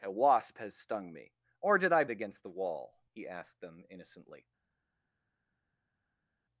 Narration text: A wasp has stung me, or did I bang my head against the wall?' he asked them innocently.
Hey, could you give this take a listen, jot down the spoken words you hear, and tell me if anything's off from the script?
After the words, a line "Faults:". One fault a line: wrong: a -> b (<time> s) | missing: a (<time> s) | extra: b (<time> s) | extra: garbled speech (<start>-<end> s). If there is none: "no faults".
A wasp has stung me, or did I against the wall?' he asked them innocently.
Faults:
missing: bang my head (2.0 s)